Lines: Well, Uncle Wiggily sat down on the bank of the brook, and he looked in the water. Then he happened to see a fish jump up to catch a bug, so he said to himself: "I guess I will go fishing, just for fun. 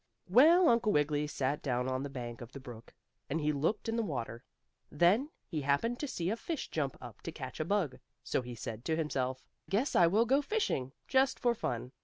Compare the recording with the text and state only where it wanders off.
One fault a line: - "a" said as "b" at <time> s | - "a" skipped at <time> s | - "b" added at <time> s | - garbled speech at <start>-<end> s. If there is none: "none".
- "I" skipped at 9.5 s